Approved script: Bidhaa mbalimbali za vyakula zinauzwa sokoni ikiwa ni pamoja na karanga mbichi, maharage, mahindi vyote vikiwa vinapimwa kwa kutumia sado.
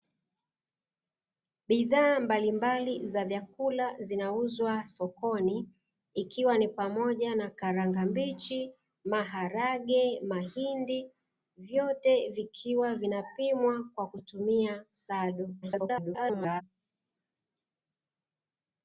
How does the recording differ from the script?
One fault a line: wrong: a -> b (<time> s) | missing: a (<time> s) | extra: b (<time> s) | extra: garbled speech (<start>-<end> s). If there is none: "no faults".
extra: garbled speech (15.6-16.6 s)